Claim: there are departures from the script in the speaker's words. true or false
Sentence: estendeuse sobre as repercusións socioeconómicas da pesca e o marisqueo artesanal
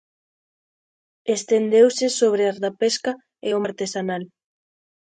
true